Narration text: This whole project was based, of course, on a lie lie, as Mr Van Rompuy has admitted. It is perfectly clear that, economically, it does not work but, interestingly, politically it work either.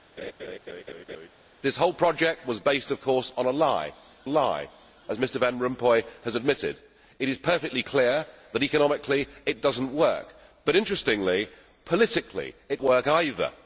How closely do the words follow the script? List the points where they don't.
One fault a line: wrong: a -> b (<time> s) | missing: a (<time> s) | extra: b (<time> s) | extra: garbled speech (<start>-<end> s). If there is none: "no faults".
no faults